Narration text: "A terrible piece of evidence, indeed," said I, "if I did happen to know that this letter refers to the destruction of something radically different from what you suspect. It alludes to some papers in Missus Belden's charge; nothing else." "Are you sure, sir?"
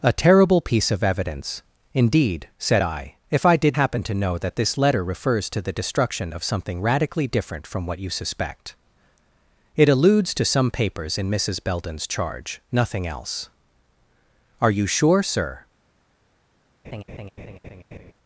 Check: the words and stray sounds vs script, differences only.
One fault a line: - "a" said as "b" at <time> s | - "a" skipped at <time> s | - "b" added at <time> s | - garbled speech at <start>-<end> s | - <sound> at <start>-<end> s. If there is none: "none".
- laugh at 16.8-18.1 s